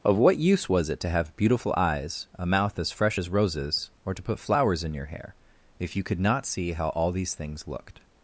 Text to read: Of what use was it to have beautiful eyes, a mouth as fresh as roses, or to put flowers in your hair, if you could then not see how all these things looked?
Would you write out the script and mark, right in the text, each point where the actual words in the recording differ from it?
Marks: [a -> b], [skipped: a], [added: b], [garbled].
Of what use was it to have beautiful eyes, a mouth as fresh as roses, or to put flowers in your hair, if you could [skipped: then] not see how all these things looked?